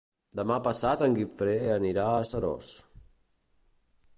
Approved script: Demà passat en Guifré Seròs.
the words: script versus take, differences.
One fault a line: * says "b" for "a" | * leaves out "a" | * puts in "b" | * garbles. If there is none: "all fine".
* puts in "anirà a"